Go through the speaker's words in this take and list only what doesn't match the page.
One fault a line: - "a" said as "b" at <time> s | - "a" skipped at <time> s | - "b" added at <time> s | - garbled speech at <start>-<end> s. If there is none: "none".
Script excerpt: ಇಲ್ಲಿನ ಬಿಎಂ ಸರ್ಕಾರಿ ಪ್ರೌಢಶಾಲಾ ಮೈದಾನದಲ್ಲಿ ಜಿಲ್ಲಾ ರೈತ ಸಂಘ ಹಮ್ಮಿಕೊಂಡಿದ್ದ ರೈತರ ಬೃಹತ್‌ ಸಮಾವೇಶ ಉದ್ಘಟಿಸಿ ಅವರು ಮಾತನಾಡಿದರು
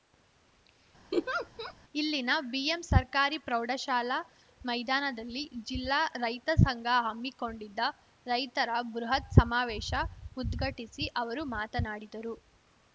none